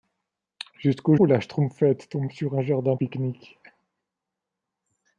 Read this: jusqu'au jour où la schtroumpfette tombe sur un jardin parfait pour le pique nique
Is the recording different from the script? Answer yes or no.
yes